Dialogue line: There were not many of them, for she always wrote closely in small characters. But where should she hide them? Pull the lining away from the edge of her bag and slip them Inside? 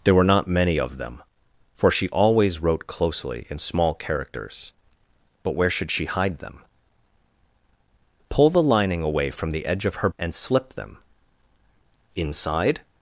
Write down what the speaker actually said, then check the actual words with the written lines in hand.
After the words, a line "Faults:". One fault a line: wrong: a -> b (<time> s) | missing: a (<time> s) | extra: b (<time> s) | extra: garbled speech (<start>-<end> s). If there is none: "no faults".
There were not many of them, for she always wrote closely in small characters. But where should she hide them? Pull the lining away from the edge of her and slip them Inside?
Faults:
missing: bag (10.1 s)